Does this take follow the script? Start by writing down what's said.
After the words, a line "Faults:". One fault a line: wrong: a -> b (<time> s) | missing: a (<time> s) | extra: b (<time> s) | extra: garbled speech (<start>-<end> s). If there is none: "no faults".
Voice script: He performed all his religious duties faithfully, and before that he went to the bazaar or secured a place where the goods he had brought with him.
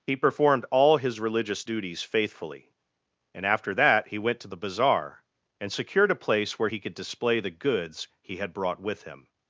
He performed all his religious duties faithfully, and after that he went to the bazaar and secured a place where he could display the goods he had brought with him.
Faults:
wrong: before -> after (3.4 s)
wrong: or -> and (5.6 s)
extra: he could display (6.7 s)